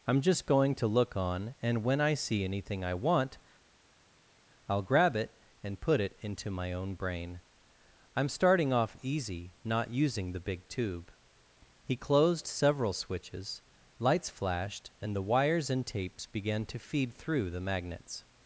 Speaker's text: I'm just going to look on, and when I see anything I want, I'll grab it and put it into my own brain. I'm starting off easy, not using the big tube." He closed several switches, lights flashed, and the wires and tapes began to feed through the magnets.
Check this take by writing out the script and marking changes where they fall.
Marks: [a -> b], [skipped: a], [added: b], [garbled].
I'm just going to look on, and when I see anything I want, I'll grab it and put it into my own brain. I'm starting off easy, not using the big tube." He closed several switches, lights flashed, and the wires and tapes began to feed through the magnets.